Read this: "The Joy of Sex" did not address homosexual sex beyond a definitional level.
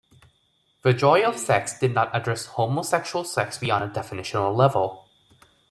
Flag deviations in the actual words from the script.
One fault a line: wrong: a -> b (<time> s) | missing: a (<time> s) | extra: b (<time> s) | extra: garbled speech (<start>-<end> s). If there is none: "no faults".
no faults